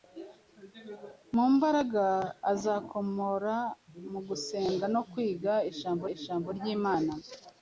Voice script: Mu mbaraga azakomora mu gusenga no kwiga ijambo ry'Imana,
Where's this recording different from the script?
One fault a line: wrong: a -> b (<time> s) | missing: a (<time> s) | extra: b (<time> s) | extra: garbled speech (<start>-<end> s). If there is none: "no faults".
extra: ijambo (6.1 s)